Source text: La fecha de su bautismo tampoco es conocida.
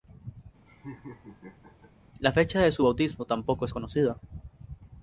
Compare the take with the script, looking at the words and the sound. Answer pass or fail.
fail